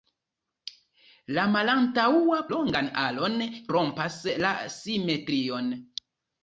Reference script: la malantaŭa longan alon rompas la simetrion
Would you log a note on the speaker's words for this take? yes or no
no